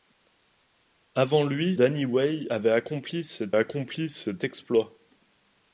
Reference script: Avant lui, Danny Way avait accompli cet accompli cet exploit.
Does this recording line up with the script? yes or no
yes